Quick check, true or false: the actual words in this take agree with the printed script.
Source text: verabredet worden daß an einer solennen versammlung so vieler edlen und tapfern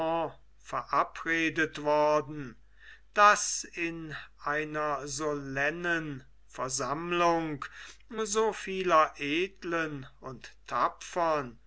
false